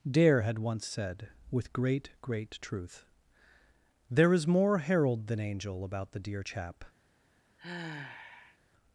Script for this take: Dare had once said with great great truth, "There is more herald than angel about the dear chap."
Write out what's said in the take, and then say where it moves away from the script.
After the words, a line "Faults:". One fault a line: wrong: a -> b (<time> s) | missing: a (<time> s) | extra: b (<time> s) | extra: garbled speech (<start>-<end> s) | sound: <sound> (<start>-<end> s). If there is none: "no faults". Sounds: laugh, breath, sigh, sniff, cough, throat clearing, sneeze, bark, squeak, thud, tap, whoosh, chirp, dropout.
Dare had once said with great great truth, "There is more herald than angel about the dear chap."
Faults:
sound: sigh (7.6-8.6 s)